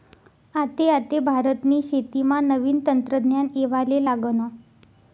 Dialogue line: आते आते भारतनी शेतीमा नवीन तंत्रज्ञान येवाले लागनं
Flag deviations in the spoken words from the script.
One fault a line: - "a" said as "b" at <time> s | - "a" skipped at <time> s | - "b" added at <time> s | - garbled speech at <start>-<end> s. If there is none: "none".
none